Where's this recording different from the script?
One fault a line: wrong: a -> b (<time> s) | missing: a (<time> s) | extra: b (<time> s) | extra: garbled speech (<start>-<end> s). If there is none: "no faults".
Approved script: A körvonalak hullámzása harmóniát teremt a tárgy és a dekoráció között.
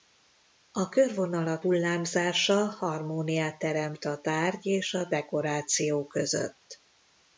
no faults